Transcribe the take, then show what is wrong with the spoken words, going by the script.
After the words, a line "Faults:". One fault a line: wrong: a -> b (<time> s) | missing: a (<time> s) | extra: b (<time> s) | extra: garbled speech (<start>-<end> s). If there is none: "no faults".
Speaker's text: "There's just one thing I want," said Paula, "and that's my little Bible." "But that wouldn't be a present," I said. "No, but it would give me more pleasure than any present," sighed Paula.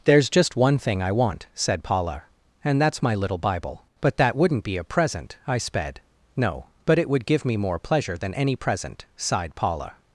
"There's just one thing I want," said Paula, "and that's my little Bible." "But that wouldn't be a present," I sped. "No, but it would give me more pleasure than any present," sighed Paula.
Faults:
wrong: said -> sped (5.6 s)